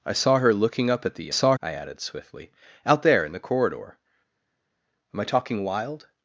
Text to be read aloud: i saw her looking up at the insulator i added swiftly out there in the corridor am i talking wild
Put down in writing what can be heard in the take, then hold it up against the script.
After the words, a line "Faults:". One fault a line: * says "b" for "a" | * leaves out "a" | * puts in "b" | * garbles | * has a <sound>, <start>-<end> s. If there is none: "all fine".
i saw her looking up at the saw i added swiftly out there in the corridor am i talking wild
Faults:
* says "saw" for "insulator"